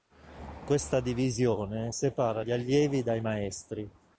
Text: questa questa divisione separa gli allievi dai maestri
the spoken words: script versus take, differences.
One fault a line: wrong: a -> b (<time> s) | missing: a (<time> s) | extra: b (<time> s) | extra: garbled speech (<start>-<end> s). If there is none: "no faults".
missing: questa (1.0 s)